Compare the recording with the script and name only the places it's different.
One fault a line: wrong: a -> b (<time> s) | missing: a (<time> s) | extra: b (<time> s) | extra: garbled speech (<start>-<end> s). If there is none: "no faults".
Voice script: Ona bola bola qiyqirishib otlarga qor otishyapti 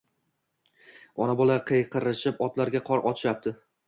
missing: bola (1.6 s)